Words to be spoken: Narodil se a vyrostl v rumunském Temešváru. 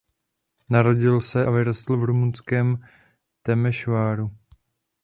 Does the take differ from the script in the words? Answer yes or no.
no